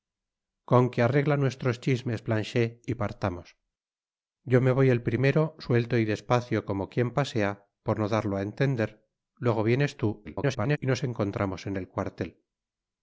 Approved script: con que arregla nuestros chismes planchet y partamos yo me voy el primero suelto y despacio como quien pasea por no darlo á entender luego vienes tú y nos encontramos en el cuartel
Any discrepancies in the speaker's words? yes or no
yes